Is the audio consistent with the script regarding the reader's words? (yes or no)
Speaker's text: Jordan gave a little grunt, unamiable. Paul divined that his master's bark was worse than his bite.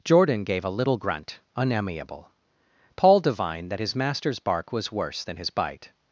yes